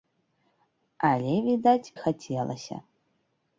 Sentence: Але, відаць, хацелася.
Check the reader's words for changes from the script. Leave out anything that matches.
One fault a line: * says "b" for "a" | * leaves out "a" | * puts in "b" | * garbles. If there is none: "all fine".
all fine